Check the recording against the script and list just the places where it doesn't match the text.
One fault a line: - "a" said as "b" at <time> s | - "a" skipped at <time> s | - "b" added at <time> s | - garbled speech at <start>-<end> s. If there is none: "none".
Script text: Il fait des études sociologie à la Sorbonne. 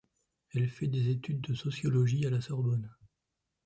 - "Il" said as "Elle" at 0.5 s
- "de" added at 1.4 s